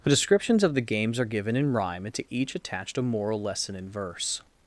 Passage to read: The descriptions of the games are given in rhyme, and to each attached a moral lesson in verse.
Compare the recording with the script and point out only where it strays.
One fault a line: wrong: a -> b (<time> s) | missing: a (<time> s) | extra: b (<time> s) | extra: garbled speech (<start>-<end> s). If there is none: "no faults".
no faults